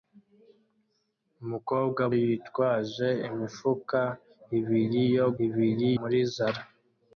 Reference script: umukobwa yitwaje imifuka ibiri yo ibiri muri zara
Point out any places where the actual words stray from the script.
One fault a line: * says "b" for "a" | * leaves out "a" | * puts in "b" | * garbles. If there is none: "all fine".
all fine